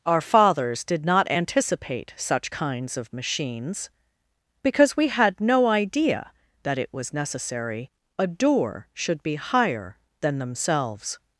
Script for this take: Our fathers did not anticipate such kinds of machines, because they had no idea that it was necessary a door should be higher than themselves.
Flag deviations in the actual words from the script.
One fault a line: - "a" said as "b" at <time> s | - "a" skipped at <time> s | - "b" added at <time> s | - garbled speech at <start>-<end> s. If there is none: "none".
- "they" said as "we" at 5.0 s